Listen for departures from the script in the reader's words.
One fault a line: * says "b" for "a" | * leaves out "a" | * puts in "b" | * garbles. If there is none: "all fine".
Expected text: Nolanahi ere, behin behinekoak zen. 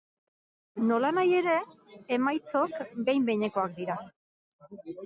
* puts in "emaitzok"
* says "dira" for "zen"